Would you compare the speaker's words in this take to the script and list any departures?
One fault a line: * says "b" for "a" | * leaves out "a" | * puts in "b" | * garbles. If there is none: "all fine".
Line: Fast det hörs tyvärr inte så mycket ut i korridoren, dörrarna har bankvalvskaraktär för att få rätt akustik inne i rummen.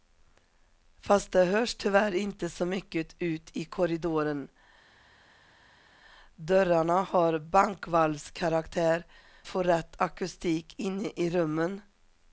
* leaves out "för att"